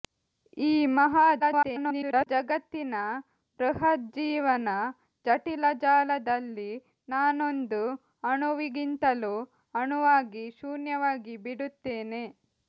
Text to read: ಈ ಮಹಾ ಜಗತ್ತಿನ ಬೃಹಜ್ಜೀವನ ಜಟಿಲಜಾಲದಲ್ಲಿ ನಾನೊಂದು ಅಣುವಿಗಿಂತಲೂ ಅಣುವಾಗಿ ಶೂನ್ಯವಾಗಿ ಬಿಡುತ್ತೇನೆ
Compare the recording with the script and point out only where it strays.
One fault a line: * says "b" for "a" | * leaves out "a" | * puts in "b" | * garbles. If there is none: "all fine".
* garbles